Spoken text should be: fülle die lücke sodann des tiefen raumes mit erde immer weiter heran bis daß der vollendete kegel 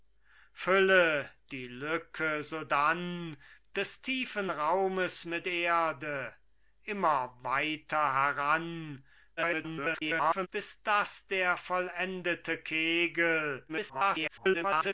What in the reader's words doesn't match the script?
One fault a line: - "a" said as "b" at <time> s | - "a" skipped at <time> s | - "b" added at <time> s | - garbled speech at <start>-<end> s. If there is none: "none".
- garbled speech at 9.4-10.5 s
- garbled speech at 13.7-14.9 s